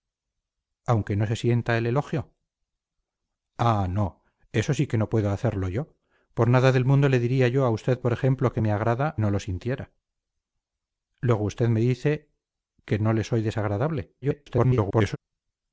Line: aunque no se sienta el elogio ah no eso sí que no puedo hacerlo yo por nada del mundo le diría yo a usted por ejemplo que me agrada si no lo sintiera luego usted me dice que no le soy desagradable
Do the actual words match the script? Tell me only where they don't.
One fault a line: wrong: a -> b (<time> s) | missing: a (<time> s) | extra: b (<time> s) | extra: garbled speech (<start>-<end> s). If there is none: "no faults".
missing: si (9.2 s)
extra: garbled speech (14.2-15.2 s)